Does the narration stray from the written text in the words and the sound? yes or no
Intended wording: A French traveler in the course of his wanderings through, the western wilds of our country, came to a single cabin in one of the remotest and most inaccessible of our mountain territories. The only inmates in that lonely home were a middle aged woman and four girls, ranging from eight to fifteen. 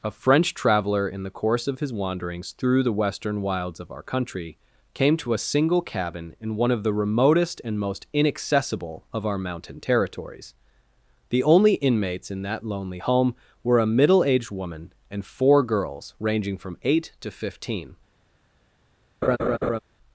yes